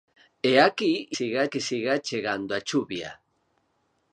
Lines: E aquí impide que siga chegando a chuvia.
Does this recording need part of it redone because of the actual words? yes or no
yes